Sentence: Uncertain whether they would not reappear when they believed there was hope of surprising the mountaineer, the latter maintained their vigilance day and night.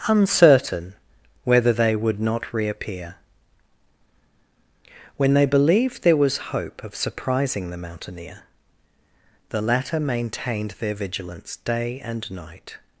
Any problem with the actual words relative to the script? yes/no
no